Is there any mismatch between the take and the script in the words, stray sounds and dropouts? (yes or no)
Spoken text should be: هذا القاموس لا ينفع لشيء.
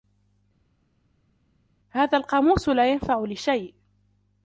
no